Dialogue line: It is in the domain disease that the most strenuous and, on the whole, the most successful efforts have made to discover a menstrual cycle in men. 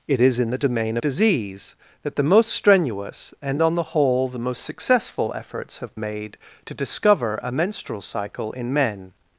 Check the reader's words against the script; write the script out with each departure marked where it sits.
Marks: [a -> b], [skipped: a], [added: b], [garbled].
It is in the domain disease that the most strenuous and, on the whole, the most successful efforts have made to discover a menstrual cycle in men.